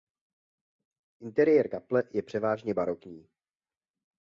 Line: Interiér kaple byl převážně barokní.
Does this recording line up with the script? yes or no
no